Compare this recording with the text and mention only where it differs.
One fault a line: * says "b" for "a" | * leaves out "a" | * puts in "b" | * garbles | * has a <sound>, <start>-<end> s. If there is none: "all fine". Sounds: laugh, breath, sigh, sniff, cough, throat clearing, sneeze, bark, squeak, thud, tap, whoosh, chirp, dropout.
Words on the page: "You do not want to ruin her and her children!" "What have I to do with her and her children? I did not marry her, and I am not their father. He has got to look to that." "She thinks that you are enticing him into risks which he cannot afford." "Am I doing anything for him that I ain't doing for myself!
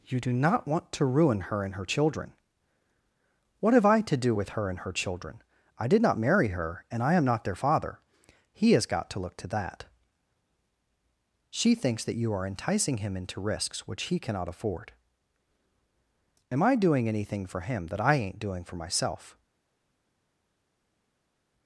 all fine